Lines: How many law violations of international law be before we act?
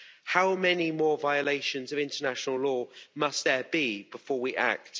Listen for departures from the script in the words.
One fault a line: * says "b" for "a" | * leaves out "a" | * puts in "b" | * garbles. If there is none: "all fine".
* says "more" for "law"
* puts in "must there"